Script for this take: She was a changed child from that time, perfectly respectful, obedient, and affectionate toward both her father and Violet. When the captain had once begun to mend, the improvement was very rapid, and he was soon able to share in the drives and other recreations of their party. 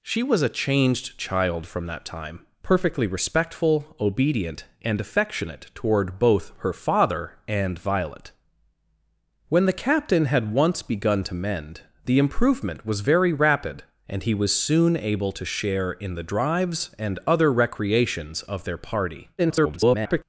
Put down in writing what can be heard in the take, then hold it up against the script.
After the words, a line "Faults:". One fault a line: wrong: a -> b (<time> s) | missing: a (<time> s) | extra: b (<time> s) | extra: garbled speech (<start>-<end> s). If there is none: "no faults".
She was a changed child from that time, perfectly respectful, obedient, and affectionate toward both her father and Violet. When the captain had once begun to mend, the improvement was very rapid, and he was soon able to share in the drives and other recreations of their party. [garbled]
Faults:
extra: garbled speech (19.4-20.2 s)